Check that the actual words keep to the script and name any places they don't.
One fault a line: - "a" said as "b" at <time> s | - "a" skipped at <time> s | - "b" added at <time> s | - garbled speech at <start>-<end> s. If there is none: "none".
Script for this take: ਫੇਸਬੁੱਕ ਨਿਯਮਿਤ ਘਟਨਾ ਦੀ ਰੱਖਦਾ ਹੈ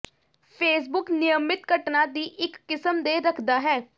- "ਇੱਕ ਕਿਸਮ ਦੇ" added at 2.4 s